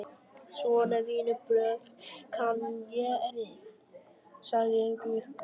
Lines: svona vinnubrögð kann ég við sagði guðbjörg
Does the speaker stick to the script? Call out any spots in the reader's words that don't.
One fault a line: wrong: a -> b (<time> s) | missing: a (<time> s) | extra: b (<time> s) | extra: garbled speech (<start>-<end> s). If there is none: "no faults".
no faults